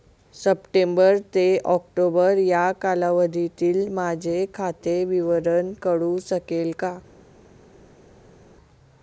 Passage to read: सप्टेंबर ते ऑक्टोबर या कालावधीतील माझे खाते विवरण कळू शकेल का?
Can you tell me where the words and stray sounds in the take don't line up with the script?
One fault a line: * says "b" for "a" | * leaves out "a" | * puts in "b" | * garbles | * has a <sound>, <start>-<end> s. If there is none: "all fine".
all fine